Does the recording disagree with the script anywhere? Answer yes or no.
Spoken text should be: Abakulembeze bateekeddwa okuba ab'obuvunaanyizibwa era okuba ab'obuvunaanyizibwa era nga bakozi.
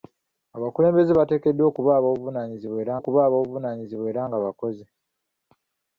no